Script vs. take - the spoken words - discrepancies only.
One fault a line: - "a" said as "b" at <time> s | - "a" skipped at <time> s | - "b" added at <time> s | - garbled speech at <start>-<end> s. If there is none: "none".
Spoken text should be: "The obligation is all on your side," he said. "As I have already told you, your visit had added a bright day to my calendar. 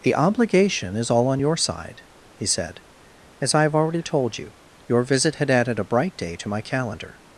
none